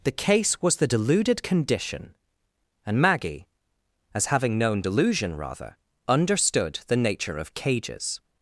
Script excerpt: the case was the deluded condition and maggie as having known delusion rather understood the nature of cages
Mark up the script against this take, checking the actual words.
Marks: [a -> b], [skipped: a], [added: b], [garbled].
the case was the deluded condition and maggie as having known delusion rather understood the nature of cages